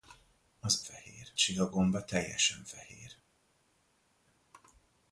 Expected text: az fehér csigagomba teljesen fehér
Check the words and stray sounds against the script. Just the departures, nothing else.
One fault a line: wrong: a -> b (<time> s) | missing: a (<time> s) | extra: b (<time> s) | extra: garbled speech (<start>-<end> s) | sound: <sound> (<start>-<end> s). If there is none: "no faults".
no faults